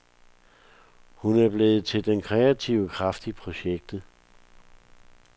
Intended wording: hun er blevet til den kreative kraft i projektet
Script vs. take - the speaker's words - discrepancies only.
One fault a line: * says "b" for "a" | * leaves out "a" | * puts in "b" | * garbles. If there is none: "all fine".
all fine